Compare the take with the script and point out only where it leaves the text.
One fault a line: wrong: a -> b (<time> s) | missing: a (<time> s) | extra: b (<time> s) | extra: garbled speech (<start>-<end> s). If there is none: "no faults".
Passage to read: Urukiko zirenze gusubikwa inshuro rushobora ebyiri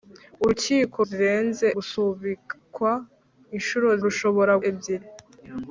no faults